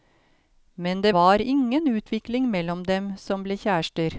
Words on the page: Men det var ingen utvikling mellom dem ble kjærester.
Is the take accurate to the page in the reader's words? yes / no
no